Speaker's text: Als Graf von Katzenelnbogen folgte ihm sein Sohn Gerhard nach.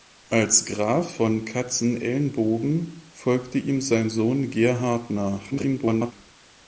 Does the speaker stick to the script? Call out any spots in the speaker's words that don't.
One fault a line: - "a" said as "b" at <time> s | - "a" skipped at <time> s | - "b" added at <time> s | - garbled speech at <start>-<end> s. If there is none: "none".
- garbled speech at 5.5-6.1 s